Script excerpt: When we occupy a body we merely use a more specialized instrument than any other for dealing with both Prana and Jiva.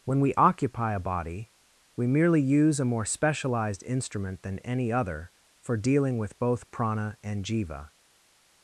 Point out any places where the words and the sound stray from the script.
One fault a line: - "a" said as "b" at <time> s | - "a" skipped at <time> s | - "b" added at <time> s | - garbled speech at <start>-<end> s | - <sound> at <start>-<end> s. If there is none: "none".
none